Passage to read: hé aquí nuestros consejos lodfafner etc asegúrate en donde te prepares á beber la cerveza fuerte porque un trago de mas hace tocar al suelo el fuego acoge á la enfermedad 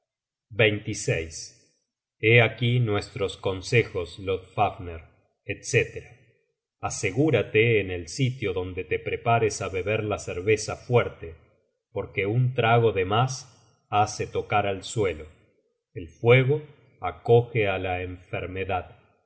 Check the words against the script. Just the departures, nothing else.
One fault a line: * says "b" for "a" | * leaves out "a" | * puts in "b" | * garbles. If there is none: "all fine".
* puts in "el sitio"